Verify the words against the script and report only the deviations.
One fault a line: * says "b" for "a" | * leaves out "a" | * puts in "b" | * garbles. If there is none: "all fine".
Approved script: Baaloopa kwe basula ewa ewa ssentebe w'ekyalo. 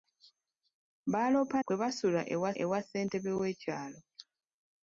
all fine